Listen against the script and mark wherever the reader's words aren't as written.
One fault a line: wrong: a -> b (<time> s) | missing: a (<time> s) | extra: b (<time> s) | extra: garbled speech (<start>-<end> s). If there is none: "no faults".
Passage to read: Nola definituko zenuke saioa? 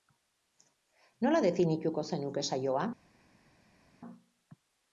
no faults